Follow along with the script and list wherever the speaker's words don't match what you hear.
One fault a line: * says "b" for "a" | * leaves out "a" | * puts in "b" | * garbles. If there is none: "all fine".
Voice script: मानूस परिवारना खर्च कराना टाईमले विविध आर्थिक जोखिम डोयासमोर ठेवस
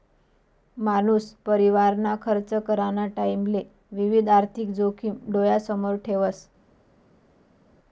all fine